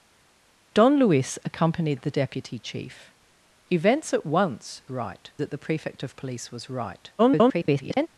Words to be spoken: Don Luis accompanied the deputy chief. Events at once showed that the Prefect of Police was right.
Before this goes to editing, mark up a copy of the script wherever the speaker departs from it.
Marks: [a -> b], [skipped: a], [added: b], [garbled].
Don Luis accompanied the deputy chief. Events at once [showed -> right] that the Prefect of Police was right. [garbled]